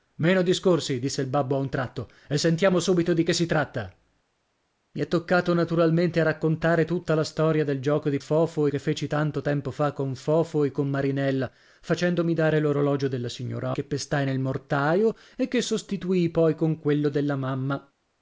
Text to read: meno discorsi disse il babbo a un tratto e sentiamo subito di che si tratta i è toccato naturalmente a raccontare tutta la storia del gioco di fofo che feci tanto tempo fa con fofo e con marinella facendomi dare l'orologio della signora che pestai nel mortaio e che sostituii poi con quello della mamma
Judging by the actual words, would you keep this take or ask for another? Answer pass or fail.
pass